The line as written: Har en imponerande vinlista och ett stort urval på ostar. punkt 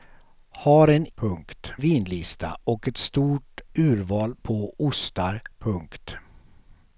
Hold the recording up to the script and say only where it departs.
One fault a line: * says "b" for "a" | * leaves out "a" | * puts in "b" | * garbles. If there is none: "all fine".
* says "punkt" for "imponerande"